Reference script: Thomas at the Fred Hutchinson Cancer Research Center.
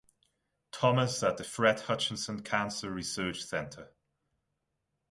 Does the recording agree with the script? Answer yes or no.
yes